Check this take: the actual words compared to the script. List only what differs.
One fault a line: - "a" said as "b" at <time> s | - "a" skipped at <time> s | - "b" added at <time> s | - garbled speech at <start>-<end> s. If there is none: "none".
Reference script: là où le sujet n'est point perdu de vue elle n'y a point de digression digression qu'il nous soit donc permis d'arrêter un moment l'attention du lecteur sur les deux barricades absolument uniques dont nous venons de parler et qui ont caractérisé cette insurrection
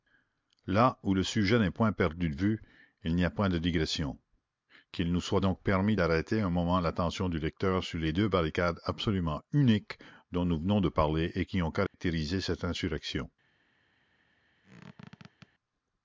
- "elle" said as "il" at 3.0 s
- "digression" skipped at 4.2 s